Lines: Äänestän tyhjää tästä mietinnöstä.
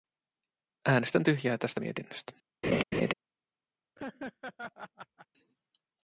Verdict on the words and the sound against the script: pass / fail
fail